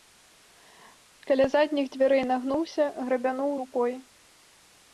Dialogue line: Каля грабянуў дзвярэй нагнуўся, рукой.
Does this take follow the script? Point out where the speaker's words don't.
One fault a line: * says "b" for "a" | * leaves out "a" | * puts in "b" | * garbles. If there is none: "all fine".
* says "задніх" for "грабянуў"
* puts in "грабянуў"